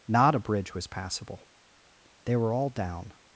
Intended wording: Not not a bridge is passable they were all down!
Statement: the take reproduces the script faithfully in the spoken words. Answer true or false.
false